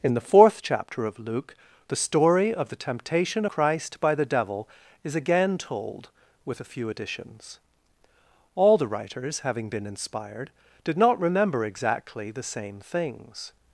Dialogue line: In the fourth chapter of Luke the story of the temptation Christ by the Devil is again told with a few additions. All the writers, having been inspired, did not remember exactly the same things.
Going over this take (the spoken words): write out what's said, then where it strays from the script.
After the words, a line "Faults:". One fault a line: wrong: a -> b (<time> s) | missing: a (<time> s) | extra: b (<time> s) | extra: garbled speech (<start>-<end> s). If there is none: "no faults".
In the fourth chapter of Luke the story of the temptation Christ by the Devil is again told with a few additions. All the writers, having been inspired, did not remember exactly the same things.
Faults:
no faults